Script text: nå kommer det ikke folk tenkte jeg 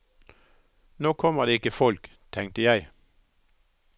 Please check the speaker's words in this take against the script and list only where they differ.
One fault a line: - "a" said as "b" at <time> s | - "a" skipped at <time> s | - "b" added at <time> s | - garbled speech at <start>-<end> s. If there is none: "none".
none